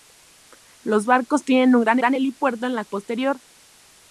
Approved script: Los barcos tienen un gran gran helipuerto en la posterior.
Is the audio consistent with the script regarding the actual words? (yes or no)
yes